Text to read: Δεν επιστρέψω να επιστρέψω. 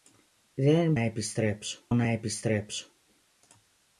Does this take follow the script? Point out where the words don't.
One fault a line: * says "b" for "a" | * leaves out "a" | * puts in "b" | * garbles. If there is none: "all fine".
all fine